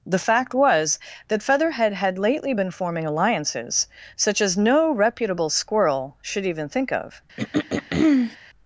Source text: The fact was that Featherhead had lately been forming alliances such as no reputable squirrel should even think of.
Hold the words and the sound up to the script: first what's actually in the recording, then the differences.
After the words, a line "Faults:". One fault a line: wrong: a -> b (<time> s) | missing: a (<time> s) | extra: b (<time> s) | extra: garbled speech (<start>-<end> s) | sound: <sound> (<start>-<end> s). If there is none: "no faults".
The fact was that Featherhead had lately been forming alliances such as no reputable squirrel should even think of.
Faults:
sound: throat clearing (7.4-8.4 s)